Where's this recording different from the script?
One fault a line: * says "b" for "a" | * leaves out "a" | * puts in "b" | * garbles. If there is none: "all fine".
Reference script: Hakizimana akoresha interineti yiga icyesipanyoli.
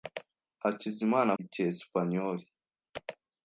* leaves out "akoresha interineti yiga"